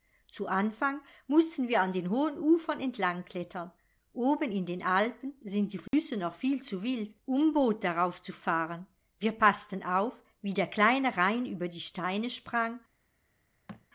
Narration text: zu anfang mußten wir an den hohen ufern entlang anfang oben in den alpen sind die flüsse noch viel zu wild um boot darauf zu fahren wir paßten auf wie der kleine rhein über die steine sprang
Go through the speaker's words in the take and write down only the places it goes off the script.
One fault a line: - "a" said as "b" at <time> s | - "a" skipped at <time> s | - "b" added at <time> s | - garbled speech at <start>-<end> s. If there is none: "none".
- "anfang" said as "klettern" at 3.2 s